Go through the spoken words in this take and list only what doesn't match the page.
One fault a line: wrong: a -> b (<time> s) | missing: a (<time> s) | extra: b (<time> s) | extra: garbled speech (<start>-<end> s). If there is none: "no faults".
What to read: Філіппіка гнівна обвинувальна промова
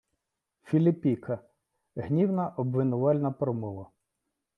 no faults